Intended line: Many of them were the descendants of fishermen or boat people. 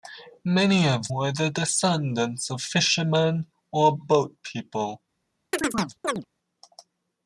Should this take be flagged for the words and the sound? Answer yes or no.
yes